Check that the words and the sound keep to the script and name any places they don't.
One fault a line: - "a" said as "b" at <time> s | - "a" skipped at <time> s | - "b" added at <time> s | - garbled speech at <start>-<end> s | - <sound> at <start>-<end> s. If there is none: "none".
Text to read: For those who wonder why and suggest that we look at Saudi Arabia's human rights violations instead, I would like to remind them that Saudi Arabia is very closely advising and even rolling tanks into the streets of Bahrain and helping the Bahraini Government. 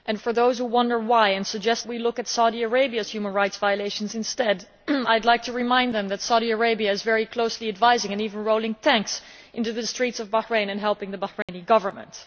- "that" skipped at 1.9 s
- dropout at 11.4-11.5 s